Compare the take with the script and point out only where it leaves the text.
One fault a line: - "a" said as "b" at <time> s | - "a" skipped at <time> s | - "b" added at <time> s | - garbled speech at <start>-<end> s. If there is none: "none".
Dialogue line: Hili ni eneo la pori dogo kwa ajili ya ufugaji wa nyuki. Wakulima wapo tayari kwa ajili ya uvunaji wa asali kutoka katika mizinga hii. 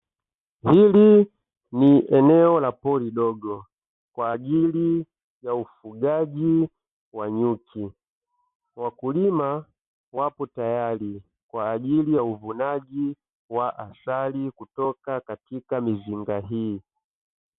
none